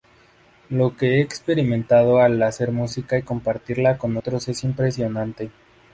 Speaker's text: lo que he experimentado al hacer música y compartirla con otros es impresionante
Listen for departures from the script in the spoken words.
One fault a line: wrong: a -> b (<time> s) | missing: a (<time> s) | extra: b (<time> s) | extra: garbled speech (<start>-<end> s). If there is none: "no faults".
no faults